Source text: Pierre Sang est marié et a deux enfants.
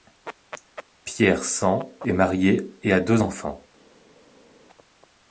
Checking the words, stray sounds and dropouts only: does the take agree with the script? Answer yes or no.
yes